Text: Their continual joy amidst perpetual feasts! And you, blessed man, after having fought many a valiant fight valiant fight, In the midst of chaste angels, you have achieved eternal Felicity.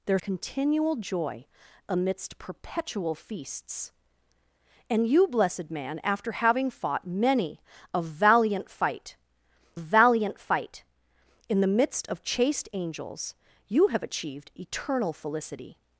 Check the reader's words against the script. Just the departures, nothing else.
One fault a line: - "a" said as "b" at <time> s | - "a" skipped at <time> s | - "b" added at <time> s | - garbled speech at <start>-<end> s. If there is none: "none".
none